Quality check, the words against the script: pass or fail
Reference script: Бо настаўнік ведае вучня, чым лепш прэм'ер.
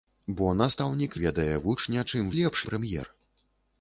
pass